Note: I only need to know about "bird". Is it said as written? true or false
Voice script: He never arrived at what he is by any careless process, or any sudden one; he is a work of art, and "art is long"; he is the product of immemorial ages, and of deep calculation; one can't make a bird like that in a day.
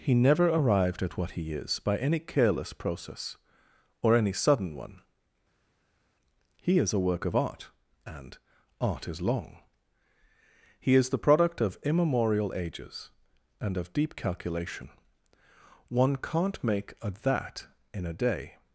false